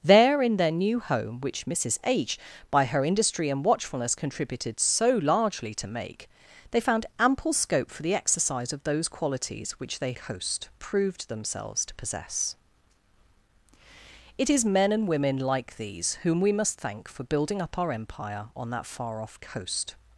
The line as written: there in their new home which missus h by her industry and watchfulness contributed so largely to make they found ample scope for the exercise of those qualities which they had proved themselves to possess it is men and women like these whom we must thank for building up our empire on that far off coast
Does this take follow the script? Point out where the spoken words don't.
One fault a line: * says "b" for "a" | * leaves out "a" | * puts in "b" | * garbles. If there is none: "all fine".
* says "coast" for "had"